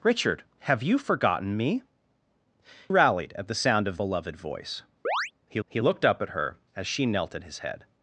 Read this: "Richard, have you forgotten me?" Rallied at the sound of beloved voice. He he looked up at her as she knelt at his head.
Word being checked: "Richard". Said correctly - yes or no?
yes